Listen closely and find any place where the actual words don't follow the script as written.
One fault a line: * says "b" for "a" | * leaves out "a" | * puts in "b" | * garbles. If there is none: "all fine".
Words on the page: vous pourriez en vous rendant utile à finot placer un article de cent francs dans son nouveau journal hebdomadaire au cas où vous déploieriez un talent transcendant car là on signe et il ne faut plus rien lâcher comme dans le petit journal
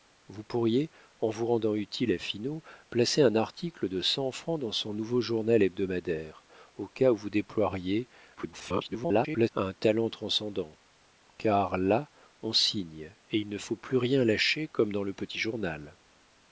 * garbles